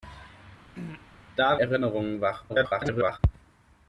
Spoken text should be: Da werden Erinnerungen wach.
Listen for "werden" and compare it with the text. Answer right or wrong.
wrong